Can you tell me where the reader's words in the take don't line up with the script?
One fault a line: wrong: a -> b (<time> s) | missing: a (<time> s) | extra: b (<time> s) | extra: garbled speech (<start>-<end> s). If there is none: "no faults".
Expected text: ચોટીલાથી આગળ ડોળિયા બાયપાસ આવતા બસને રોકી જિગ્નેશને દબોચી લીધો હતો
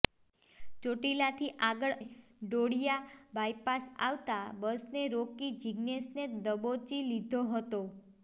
no faults